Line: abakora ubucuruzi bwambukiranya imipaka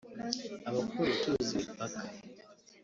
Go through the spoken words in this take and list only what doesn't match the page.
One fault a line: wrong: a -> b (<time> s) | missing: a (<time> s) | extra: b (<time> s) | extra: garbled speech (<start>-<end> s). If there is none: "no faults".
missing: bwambukiranya (1.5 s)